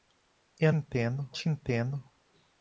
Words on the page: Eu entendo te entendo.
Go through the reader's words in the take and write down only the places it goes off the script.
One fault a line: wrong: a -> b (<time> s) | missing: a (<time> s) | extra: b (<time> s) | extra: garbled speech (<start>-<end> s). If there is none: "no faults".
no faults